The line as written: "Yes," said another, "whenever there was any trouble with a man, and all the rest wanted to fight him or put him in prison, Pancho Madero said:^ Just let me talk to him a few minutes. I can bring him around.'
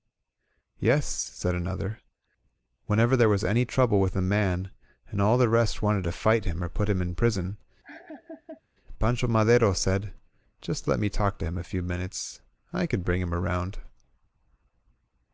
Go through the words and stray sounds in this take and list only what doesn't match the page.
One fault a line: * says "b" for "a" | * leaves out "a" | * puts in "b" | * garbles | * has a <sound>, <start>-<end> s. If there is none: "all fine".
* has a laugh, 7.8-8.6 s